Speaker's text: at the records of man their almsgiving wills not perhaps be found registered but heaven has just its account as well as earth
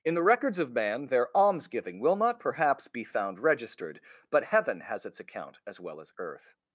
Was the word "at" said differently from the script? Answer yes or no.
yes